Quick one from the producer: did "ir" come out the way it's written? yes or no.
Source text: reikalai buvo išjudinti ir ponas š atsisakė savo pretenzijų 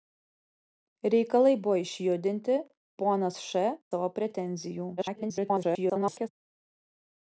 no